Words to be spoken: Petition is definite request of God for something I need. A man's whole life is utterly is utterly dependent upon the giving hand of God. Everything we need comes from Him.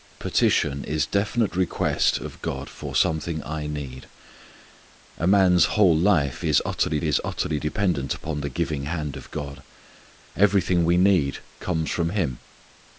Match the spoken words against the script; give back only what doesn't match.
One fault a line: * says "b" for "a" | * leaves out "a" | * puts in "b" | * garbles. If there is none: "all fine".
all fine